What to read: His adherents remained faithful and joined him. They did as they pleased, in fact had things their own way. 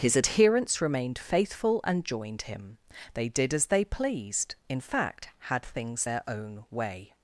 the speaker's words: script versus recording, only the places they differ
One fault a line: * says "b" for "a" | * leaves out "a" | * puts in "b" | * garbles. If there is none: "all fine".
all fine